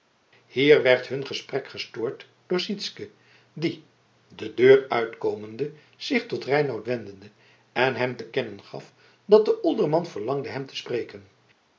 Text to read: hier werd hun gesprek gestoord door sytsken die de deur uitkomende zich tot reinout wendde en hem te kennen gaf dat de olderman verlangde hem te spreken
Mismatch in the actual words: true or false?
false